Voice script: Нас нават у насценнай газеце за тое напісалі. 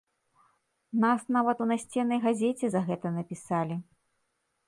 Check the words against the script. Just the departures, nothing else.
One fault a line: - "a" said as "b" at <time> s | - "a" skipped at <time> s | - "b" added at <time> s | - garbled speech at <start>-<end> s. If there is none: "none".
- "тое" said as "гэта" at 2.9 s